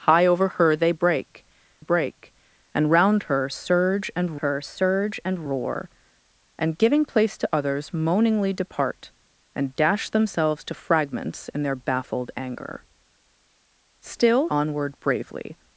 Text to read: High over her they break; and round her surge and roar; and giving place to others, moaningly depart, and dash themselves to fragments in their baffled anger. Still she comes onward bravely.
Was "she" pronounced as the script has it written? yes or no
no